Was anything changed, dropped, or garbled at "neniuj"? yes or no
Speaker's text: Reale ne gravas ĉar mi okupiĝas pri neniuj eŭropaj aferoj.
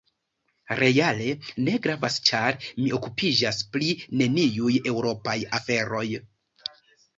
no